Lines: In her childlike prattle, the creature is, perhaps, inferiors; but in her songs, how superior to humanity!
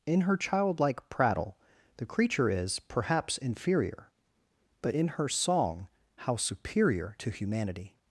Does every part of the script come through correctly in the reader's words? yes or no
no